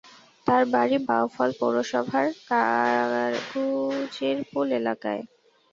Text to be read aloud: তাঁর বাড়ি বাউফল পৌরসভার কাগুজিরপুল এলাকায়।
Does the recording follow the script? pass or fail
pass